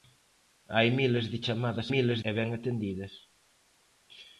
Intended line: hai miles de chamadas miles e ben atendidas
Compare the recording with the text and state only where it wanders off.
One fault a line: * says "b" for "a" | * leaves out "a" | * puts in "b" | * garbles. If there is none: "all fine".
all fine